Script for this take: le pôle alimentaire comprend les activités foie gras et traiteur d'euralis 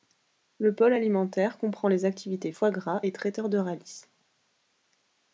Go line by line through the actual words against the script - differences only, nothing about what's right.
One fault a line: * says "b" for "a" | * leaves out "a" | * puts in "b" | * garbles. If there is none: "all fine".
all fine